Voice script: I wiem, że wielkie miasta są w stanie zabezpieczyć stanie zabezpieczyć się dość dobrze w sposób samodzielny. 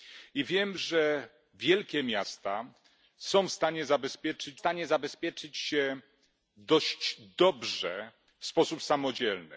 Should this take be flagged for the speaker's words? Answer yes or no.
no